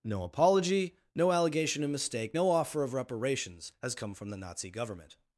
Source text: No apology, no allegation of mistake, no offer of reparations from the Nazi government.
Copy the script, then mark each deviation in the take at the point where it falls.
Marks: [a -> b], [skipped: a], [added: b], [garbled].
No apology, no allegation of mistake, no offer of reparations [added: has come] from the Nazi government.